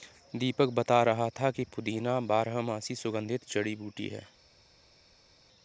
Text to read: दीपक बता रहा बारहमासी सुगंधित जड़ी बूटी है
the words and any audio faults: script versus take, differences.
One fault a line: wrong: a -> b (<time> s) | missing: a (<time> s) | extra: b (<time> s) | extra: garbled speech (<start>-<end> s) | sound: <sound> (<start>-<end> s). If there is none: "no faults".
extra: था कि पुदीना (1.4 s)